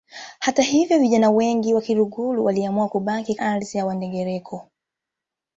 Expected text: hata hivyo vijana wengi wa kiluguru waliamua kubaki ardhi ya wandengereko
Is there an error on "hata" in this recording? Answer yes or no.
no